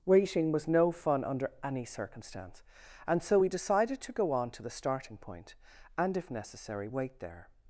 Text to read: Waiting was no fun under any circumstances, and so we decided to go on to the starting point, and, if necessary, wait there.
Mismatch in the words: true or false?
true